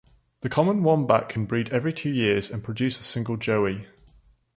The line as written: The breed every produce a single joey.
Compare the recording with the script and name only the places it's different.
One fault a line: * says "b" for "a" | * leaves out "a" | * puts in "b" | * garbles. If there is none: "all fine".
* puts in "common wombat can"
* puts in "two years and"